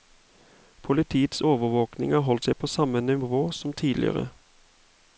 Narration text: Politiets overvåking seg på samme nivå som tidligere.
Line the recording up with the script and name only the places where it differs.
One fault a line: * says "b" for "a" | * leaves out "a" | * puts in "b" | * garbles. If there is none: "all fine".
* puts in "har holdt"